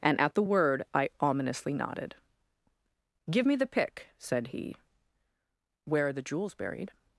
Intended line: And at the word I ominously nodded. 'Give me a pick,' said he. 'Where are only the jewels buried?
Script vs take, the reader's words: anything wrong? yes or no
yes